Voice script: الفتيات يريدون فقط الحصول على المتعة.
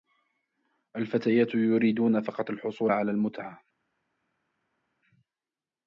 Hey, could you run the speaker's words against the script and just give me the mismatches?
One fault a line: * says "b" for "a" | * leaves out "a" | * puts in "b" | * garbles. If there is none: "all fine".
all fine